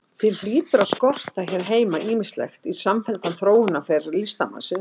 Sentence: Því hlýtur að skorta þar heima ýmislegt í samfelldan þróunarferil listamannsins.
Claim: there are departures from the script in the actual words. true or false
true